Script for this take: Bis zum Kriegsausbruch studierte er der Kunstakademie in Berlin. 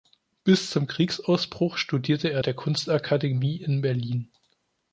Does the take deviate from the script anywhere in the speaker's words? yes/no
no